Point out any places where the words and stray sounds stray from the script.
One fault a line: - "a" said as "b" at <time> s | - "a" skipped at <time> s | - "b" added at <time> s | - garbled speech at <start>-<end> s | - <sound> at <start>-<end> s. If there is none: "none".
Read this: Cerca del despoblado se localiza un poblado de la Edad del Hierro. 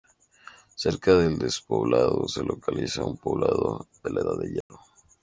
- dropout at 4.6-4.7 s